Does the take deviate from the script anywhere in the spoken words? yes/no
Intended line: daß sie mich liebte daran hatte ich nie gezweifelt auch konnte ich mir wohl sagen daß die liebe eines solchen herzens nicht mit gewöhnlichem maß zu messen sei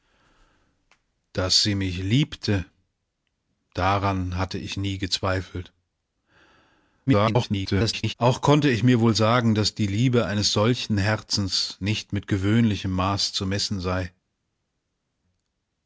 yes